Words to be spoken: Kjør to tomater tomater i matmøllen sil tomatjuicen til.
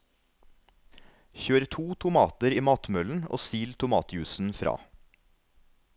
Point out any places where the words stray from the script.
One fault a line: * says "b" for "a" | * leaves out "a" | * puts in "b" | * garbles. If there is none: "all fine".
* leaves out "tomater"
* puts in "og"
* says "fra" for "til"